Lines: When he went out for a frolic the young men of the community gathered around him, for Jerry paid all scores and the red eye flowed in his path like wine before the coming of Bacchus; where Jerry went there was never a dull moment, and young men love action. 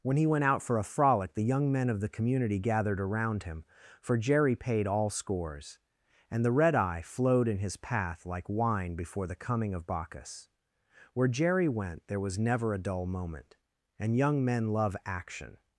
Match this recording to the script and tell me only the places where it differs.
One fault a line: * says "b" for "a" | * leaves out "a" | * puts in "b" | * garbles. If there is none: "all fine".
all fine